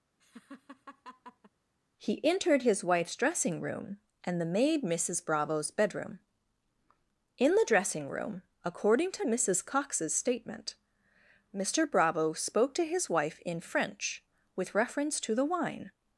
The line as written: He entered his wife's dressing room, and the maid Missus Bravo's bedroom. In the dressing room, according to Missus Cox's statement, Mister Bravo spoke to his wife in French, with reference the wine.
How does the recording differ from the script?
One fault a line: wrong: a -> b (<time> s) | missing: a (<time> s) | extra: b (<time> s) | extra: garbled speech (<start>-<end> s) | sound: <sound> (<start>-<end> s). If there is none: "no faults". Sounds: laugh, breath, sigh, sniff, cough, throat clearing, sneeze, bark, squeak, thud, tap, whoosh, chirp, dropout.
sound: laugh (0.2-1.5 s)
extra: to (15.2 s)